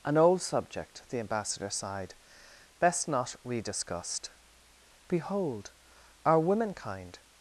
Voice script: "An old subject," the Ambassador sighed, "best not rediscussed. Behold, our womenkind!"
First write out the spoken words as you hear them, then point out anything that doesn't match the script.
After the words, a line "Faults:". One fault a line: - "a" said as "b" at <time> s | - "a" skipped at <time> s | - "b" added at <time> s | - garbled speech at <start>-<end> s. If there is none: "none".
"An old subject," the Ambassador sighed, "best not rediscussed. Behold, our womenkind!"
Faults:
none